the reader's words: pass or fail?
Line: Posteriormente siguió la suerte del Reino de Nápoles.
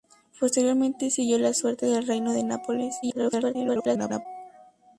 fail